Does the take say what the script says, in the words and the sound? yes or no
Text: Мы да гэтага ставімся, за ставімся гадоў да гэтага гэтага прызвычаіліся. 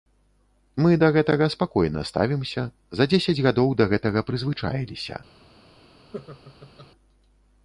no